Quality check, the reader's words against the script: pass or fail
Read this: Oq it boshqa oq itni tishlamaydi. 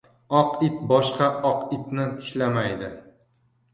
pass